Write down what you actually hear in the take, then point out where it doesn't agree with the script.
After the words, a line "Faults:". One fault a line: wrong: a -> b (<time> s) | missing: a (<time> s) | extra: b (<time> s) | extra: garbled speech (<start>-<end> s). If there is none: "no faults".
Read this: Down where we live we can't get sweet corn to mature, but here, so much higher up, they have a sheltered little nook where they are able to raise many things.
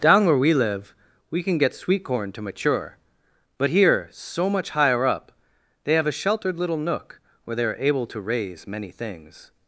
Down where we live we can get sweet corn to mature, but here, so much higher up, they have a sheltered little nook where they are able to raise many things.
Faults:
wrong: can't -> can (1.4 s)